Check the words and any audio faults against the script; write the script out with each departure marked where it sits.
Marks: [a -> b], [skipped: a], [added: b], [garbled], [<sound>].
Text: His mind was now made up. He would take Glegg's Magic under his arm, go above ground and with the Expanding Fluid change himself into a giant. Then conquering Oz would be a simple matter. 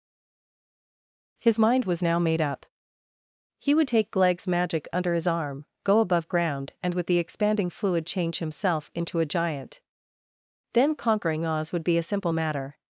His mind was now made up. He would take Glegg's Magic under his arm, go above ground and with the Expanding Fluid change himself into a giant. Then conquering Oz would be a simple matter.